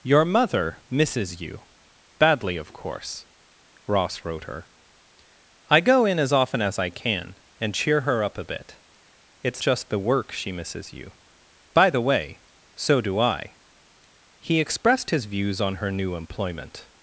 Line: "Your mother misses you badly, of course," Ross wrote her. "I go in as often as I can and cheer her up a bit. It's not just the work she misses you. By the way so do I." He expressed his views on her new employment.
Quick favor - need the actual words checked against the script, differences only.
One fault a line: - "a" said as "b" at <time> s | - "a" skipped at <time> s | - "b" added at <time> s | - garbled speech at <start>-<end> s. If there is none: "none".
- "not" skipped at 9.6 s